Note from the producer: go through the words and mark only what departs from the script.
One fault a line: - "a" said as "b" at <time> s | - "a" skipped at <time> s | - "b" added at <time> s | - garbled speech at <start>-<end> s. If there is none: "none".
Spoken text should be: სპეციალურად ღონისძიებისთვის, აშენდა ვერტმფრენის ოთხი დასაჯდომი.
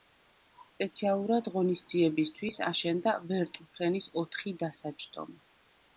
none